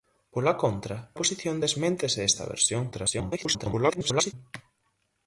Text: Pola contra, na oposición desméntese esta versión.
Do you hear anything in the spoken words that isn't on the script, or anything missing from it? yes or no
yes